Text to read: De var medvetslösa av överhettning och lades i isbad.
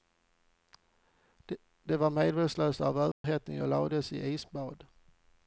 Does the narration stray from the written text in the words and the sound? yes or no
yes